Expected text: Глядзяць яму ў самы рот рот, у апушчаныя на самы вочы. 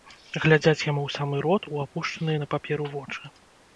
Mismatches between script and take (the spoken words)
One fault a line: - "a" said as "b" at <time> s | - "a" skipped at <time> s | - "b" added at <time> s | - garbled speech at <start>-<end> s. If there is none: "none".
- "рот" skipped at 1.7 s
- "самы" said as "паперу" at 2.6 s